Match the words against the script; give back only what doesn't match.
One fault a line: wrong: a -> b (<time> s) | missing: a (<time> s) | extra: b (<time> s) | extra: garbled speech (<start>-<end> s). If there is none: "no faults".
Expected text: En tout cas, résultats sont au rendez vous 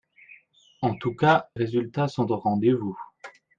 no faults